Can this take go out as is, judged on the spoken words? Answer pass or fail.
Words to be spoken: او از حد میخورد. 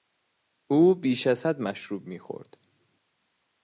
fail